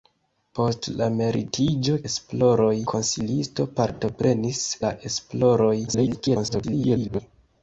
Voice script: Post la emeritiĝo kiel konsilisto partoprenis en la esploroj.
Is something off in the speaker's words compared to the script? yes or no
yes